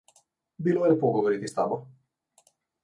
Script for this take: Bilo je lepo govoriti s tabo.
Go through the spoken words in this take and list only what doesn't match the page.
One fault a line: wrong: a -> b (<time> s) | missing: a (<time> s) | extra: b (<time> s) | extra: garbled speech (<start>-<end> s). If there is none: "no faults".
no faults